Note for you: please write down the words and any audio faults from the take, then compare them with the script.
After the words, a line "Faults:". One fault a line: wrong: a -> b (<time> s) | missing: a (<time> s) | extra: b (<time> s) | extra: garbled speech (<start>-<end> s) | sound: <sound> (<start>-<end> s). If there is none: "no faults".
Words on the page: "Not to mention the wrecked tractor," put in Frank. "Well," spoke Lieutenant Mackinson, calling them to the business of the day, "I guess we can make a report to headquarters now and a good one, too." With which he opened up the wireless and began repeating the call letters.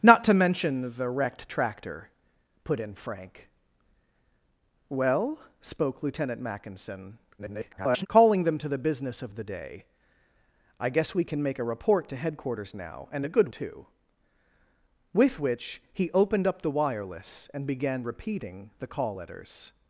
"Not to mention the wrecked tractor," put in Frank. "Well," spoke Lieutenant Mackinson, [garbled] calling them to the business of the day, "I guess we can make a report to headquarters now and a good too." With which he opened up the wireless and began repeating the call letters.
Faults:
extra: garbled speech (7.4-8.1 s)
missing: one (13.5 s)